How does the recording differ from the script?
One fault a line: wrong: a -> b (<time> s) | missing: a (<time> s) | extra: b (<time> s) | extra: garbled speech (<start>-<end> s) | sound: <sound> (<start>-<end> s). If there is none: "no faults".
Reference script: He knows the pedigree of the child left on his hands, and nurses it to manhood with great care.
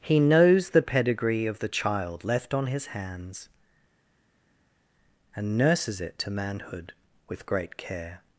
no faults